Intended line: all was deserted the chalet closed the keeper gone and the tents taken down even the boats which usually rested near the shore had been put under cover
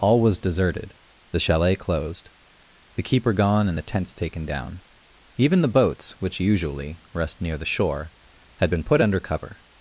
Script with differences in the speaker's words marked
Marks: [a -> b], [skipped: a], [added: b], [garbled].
all was deserted the chalet closed the keeper gone and the tents taken down even the boats which usually [rested -> rest] near the shore had been put under cover